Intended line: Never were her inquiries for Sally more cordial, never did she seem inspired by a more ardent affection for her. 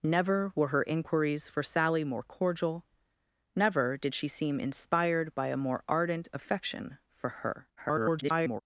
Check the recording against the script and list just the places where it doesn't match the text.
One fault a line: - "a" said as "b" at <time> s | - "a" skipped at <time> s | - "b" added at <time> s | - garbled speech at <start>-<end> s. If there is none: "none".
- garbled speech at 7.8-8.6 s